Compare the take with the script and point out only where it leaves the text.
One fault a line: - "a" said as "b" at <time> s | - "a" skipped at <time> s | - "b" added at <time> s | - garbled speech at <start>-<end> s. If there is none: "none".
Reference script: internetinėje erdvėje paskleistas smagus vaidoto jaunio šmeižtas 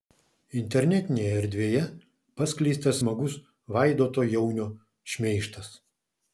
none